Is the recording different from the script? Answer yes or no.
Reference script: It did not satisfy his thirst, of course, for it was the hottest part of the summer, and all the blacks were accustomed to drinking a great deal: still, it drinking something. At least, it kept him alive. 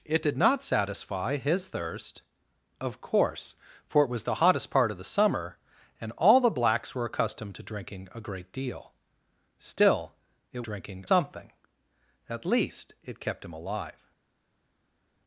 no